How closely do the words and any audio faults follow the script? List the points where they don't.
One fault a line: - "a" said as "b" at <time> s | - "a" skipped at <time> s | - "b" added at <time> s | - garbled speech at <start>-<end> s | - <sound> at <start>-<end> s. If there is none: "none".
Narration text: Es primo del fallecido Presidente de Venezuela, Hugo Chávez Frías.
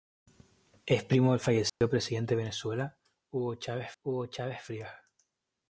- dropout at 1.7-1.8 s
- "Hugo Chávez" added at 4.0 s